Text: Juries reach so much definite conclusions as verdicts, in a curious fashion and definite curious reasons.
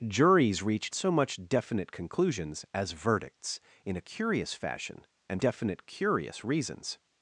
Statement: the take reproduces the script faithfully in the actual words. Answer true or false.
true